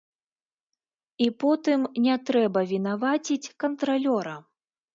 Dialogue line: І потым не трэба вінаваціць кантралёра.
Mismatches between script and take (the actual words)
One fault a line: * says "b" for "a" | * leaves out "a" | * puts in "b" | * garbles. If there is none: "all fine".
all fine